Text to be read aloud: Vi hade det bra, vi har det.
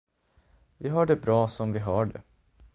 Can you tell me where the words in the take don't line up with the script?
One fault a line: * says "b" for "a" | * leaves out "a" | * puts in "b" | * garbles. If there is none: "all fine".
* says "har" for "hade"
* puts in "som"